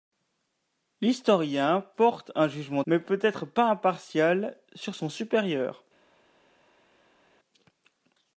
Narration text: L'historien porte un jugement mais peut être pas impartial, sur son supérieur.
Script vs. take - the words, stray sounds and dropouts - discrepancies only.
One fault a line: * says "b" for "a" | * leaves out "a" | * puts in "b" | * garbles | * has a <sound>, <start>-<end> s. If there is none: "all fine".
all fine